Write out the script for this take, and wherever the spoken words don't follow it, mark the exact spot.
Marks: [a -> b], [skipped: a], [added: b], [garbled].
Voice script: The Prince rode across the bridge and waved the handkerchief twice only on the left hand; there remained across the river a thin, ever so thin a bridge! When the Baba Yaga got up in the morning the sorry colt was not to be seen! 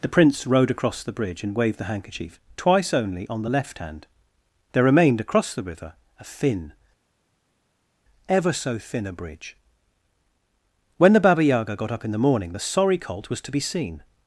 The Prince rode across the bridge and waved the handkerchief twice only on the left hand; there remained across the river a thin, ever so thin a bridge! When the Baba Yaga got up in the morning the sorry colt was [skipped: not] to be seen!